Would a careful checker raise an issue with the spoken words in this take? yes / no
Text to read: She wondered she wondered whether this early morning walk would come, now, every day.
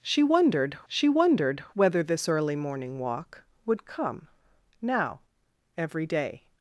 no